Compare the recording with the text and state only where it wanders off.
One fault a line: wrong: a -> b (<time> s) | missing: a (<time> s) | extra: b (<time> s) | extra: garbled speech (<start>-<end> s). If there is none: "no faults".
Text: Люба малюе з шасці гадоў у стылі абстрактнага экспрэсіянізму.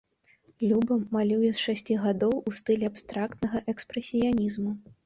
no faults